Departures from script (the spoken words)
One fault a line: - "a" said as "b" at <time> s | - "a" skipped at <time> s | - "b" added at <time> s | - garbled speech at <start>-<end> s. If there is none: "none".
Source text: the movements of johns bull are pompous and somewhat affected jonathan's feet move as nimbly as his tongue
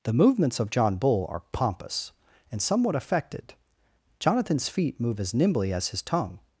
- "johns" said as "john" at 0.7 s